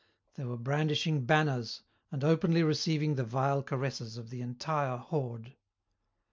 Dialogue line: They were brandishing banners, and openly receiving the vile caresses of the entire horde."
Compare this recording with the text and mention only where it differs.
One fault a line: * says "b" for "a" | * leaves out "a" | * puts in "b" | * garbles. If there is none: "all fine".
all fine